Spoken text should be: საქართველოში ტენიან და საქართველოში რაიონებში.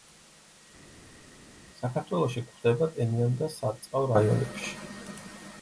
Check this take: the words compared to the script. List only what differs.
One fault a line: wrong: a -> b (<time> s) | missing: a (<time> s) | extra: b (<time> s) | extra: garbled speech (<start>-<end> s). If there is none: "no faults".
extra: გვხვდება (2.5 s)
wrong: საქართველოში -> სარწყავ (3.6 s)